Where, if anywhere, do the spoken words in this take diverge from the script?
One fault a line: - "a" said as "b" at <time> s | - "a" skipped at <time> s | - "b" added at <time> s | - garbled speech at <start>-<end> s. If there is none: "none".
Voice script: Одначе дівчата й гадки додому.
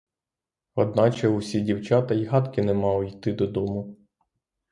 - "усі" added at 1.3 s
- "не мали йти" added at 2.6 s